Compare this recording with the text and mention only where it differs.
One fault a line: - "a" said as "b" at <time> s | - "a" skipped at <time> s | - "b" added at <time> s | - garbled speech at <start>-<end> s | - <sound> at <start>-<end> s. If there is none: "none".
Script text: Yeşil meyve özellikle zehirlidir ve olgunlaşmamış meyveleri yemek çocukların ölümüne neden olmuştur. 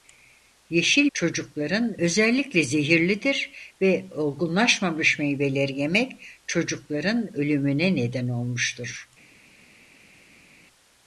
- "meyve" said as "çocukların" at 1.1 s